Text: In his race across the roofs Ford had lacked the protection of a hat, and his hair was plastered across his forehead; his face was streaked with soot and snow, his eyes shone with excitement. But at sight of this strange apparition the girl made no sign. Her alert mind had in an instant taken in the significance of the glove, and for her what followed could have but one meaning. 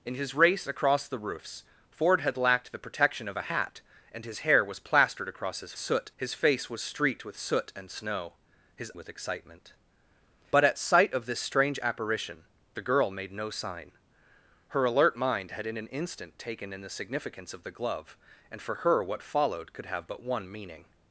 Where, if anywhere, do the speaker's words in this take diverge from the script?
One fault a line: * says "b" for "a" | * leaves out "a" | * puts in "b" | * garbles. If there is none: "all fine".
* says "soot" for "forehead"
* leaves out "eyes shone"